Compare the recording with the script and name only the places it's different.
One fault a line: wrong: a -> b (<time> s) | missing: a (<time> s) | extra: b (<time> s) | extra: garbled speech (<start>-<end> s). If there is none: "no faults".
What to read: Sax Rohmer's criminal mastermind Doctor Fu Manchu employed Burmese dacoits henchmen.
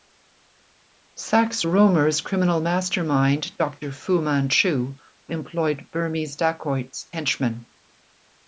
no faults